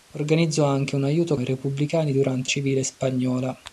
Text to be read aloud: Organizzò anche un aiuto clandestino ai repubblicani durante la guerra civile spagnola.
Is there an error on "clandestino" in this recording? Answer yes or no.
yes